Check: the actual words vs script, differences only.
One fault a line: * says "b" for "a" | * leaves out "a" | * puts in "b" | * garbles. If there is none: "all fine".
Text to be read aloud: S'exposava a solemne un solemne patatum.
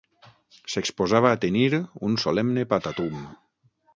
* says "tenir" for "solemne"